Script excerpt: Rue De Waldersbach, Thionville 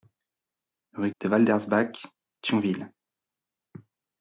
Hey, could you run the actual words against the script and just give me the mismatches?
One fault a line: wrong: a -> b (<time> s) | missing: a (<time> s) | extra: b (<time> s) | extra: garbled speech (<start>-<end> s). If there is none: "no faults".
no faults